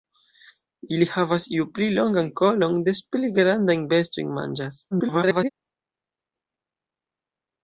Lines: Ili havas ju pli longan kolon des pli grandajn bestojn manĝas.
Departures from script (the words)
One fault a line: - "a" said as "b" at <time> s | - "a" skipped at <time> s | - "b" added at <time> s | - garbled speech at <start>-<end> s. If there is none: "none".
- garbled speech at 4.9-5.5 s